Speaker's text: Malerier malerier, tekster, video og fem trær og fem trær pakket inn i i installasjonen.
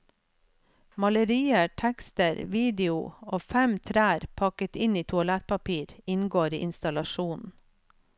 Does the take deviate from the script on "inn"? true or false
false